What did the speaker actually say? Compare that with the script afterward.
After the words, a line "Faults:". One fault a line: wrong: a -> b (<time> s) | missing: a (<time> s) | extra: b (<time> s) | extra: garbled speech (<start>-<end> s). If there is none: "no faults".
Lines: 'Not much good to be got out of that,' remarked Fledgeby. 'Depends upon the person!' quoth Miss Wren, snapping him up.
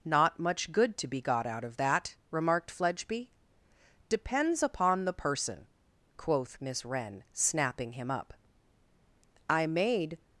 'Not much good to be got out of that,' remarked Fledgeby. 'Depends upon the person!' quoth Miss Wren, snapping him up. 'I made
Faults:
extra: I made (9.5 s)